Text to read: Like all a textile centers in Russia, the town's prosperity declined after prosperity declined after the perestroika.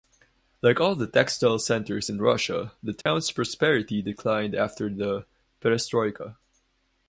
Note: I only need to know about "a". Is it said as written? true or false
false